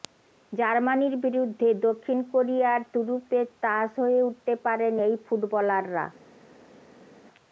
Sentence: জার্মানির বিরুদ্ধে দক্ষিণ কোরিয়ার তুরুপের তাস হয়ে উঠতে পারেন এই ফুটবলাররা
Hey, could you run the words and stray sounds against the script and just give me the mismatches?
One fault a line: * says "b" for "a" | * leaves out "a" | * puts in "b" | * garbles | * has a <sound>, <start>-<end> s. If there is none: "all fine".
all fine